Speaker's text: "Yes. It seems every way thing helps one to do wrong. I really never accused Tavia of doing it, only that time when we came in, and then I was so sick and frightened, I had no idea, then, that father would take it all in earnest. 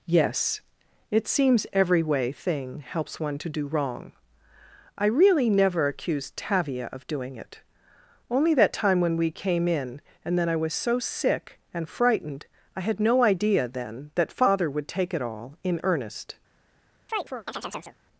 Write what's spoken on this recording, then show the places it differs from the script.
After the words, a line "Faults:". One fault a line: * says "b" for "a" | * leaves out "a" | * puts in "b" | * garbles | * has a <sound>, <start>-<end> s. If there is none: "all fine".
"Yes. It seems every way thing helps one to do wrong. I really never accused Tavia of doing it, only that time when we came in, and then I was so sick and frightened, I had no idea, then, that father would take it all in earnest.
Faults:
* has a chirp, 17.1-18.0 s